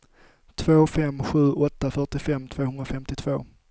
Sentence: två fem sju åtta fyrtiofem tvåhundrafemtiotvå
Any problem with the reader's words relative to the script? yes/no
no